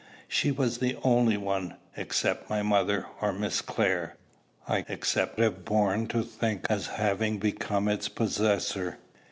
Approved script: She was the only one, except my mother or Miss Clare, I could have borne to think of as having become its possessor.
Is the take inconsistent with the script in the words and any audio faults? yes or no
yes